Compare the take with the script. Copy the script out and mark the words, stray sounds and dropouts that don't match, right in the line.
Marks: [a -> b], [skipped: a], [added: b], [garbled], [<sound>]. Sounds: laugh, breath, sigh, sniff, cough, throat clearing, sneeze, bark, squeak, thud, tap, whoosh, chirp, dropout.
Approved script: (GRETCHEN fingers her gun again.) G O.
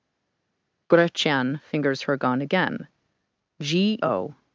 (GRETCHEN fingers her gun again.) G O.